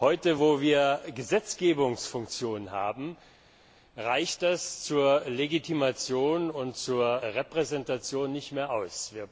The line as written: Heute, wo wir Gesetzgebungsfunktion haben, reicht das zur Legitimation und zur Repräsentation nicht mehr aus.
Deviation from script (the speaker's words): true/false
false